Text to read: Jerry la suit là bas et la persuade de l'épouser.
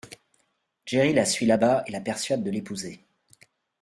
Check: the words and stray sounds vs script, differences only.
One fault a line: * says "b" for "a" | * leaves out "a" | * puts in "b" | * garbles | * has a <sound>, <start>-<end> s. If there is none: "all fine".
all fine